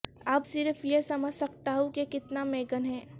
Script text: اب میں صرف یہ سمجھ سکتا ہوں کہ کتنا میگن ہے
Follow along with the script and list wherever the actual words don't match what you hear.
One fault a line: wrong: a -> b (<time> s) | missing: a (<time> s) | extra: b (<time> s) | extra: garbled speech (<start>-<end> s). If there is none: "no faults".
missing: میں (0.5 s)